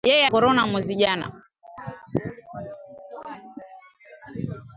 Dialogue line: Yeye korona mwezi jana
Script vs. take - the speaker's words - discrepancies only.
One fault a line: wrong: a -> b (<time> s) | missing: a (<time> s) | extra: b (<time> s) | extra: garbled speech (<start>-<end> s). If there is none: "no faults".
no faults